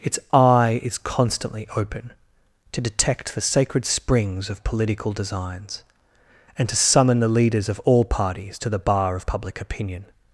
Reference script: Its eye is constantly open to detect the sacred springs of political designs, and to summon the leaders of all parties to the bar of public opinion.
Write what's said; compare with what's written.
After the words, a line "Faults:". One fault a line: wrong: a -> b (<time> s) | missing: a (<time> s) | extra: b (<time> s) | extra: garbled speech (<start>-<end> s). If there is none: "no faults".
Its eye is constantly open to detect the sacred springs of political designs, and to summon the leaders of all parties to the bar of public opinion.
Faults:
no faults